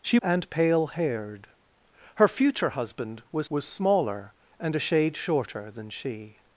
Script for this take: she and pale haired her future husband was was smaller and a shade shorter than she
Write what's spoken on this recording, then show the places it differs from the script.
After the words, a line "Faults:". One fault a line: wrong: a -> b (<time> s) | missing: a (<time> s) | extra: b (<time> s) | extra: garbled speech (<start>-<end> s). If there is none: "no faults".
she and pale haired her future husband was was smaller and a shade shorter than she
Faults:
no faults